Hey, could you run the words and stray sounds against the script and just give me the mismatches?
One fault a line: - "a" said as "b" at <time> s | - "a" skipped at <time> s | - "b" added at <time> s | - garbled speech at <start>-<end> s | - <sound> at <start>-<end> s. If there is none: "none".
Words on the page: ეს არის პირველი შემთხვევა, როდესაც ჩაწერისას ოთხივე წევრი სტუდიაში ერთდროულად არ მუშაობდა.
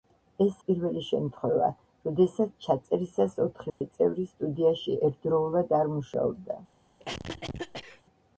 - "არის" skipped at 0.6 s
- dropout at 3.7-3.8 s
- cough at 7.0-8.0 s